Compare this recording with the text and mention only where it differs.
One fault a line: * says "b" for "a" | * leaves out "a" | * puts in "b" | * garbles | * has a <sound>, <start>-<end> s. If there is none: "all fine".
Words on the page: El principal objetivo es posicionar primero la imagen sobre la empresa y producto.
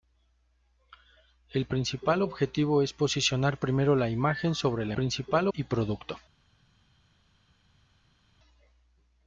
* says "principal" for "empresa"